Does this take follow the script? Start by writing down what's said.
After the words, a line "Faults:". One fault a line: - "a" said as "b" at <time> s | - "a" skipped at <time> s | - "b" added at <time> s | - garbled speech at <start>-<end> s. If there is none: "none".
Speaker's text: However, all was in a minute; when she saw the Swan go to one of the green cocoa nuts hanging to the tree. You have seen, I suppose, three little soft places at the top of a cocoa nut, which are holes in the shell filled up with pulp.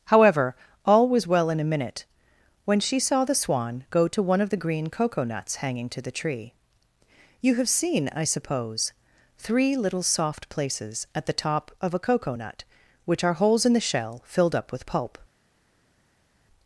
However, all was well in a minute; when she saw the Swan go to one of the green cocoa nuts hanging to the tree. You have seen, I suppose, three little soft places at the top of a cocoa nut, which are holes in the shell filled up with pulp.
Faults:
- "well" added at 1.3 s